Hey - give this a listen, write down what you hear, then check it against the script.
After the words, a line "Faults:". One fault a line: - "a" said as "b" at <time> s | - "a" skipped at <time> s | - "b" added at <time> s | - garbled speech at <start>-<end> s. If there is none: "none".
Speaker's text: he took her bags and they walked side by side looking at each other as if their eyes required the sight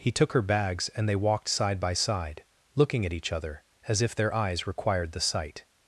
he took her bags and they walked side by side looking at each other as if their eyes required the sight
Faults:
none